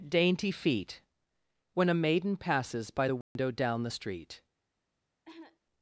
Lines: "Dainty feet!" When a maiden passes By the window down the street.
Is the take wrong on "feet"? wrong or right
right